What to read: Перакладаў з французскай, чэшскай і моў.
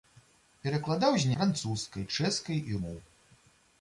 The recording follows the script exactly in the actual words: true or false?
true